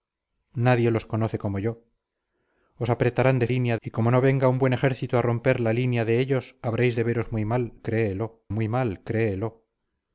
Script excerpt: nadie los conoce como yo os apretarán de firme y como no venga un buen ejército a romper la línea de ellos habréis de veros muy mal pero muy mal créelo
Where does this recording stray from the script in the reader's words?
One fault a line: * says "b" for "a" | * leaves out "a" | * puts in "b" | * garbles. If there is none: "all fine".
* says "línea" for "firme"
* says "créelo" for "pero"